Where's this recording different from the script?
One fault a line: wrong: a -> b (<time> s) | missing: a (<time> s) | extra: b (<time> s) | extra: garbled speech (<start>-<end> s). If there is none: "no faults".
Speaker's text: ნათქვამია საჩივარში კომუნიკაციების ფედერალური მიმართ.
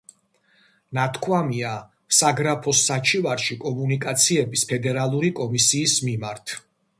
extra: საგრაფოს (2.2 s)
extra: კომისიის (5.4 s)